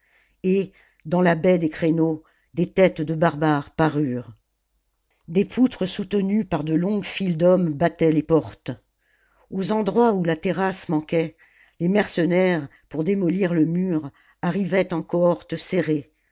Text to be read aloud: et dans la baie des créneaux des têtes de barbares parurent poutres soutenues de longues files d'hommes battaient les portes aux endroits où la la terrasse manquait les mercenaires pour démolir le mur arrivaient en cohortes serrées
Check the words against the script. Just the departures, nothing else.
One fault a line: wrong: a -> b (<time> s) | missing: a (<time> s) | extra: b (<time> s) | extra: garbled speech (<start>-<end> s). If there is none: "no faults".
extra: des (5.3 s)
extra: par (6.4 s)
missing: la (10.4 s)